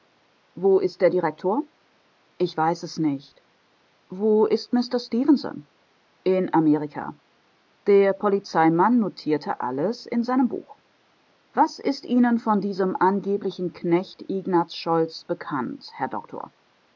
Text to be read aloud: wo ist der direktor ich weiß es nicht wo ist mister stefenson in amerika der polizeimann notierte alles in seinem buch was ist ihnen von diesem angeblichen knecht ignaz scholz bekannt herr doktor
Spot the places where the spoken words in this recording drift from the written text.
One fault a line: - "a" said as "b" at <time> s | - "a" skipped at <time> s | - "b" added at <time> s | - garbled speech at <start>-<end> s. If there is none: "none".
none